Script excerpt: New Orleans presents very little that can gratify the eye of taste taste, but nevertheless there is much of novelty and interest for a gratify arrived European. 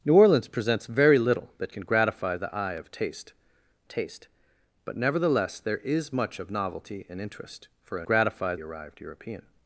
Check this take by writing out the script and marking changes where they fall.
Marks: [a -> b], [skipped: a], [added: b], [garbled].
New Orleans presents very little that can gratify the eye of taste taste, but nevertheless there is much of novelty and interest for a gratify arrived European.